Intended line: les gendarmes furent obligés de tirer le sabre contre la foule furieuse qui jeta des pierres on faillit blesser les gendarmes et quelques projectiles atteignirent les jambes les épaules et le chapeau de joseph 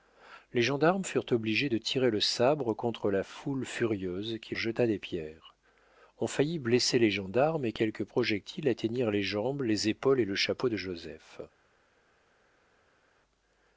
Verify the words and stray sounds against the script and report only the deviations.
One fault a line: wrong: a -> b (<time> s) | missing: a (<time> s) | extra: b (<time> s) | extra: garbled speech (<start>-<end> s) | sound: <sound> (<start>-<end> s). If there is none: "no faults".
no faults